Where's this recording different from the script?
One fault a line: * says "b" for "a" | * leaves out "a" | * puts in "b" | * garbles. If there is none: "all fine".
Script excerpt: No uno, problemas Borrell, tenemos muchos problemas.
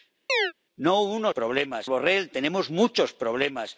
all fine